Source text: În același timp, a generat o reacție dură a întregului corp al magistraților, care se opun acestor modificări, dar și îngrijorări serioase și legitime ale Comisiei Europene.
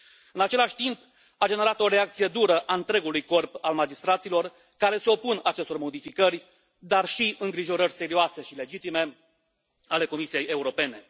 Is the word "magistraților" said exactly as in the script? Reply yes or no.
yes